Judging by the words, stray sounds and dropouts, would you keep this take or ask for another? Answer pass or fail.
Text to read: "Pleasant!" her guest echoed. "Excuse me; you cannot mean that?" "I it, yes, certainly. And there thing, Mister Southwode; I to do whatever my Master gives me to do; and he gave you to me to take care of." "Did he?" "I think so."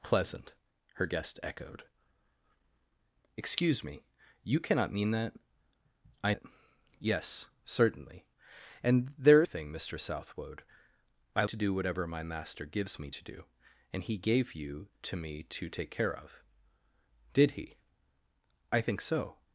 pass